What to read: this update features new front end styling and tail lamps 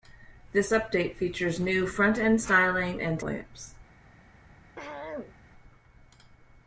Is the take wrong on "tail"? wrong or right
wrong